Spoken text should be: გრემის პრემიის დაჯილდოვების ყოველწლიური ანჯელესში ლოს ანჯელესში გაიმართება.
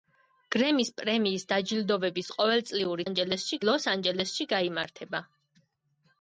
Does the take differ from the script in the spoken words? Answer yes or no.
no